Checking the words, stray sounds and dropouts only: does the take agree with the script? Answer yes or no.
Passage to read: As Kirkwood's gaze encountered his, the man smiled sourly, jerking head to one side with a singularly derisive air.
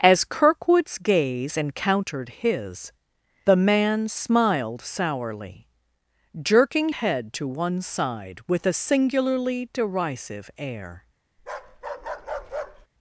no